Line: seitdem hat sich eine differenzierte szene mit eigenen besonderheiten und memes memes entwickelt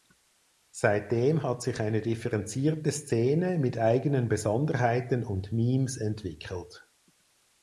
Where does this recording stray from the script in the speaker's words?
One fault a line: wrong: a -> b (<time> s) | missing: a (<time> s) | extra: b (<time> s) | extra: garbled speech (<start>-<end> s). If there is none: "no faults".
missing: memes (6.0 s)